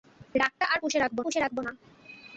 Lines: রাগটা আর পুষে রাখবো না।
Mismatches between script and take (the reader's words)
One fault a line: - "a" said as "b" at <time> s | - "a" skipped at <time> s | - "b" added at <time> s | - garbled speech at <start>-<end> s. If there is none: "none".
- "পুষে রাখবো" added at 1.2 s